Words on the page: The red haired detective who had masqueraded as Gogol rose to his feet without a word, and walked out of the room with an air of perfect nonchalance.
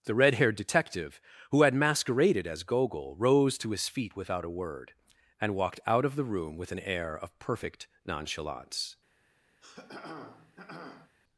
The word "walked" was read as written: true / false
true